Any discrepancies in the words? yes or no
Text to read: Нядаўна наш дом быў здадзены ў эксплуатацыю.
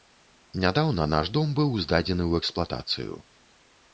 no